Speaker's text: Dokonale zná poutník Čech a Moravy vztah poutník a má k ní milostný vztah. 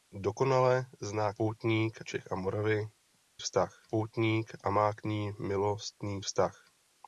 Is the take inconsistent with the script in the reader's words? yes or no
no